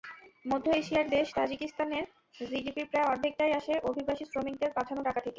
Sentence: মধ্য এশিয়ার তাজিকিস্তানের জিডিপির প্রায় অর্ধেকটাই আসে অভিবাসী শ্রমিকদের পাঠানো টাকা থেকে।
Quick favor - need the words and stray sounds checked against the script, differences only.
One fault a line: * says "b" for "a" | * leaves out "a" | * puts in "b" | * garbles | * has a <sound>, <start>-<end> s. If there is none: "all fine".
* puts in "দেশ"